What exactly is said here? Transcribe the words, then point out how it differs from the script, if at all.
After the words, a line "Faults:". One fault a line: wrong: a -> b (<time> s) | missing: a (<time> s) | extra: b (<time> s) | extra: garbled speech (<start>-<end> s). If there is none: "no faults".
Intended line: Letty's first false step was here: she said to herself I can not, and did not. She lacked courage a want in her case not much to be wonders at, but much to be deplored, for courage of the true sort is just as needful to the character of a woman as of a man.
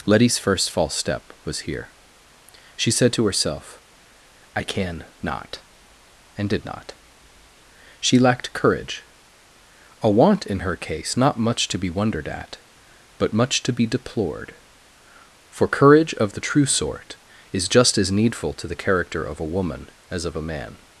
Letty's first false step was here: she said to herself I can not, and did not. She lacked courage a want in her case not much to be wondered at, but much to be deplored, for courage of the true sort is just as needful to the character of a woman as of a man.
Faults:
wrong: wonders -> wondered (11.9 s)